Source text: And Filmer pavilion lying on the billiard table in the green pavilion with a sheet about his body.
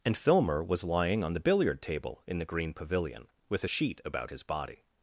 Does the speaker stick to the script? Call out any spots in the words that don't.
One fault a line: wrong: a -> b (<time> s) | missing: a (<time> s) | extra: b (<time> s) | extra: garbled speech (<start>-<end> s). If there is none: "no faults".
wrong: pavilion -> was (0.6 s)